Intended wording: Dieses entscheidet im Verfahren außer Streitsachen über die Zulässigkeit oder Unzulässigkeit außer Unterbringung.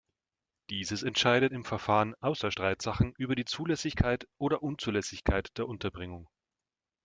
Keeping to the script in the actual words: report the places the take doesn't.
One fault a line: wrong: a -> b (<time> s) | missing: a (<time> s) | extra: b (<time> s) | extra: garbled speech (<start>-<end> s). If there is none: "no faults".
wrong: außer -> der (5.6 s)